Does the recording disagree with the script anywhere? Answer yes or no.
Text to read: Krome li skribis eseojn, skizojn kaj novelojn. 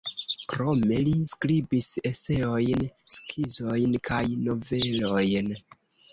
no